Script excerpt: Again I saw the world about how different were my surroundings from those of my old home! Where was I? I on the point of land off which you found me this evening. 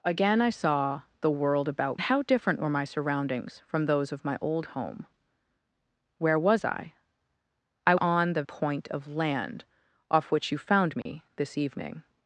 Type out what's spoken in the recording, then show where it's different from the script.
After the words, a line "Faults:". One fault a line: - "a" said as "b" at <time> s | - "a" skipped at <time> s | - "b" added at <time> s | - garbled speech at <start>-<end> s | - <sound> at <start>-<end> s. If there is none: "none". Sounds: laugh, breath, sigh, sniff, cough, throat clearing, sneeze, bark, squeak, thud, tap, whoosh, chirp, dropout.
Again I saw the world about how different were my surroundings from those of my old home! Where was I? I on the point of land off which you found me this evening.
Faults:
- dropout at 11.0-11.1 s